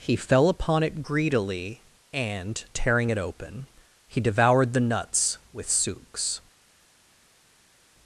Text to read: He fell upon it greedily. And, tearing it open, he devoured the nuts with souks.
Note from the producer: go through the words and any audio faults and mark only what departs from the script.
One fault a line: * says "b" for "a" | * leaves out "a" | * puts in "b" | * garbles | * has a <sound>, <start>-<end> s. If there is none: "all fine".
all fine